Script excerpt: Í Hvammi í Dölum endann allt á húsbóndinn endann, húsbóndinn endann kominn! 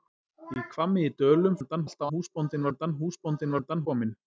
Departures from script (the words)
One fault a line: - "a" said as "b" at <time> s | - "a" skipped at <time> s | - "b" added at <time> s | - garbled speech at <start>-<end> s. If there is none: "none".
none